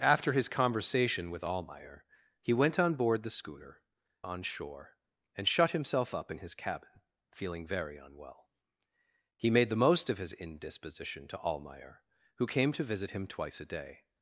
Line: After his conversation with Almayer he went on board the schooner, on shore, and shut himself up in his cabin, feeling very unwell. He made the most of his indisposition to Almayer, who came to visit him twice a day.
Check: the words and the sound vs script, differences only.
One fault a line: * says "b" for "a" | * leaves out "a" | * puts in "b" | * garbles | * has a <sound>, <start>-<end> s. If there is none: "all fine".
all fine